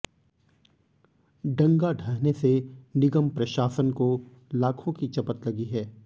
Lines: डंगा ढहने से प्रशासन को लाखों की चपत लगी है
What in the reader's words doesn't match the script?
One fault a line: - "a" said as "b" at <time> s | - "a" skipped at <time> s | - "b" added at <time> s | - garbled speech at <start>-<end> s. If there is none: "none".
- "निगम" added at 3.0 s